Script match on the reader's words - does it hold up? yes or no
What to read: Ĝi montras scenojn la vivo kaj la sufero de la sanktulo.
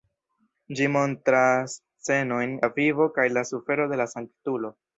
yes